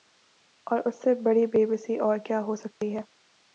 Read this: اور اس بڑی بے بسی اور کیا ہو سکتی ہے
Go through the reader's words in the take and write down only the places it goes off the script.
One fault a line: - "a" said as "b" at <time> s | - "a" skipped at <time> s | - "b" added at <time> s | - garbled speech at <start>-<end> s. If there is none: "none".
- "سے" added at 1.0 s